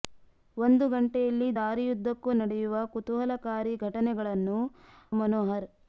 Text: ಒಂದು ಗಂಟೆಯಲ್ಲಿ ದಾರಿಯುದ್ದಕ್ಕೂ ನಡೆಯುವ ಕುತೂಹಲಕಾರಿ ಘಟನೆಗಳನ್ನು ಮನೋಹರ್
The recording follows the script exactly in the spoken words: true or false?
true